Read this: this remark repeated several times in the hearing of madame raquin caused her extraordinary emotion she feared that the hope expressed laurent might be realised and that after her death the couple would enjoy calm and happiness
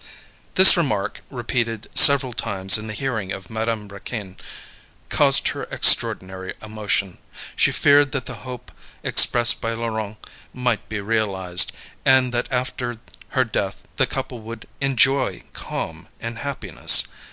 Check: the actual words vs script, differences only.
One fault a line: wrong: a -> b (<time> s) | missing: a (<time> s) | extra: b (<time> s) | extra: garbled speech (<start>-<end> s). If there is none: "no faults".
extra: by (9.6 s)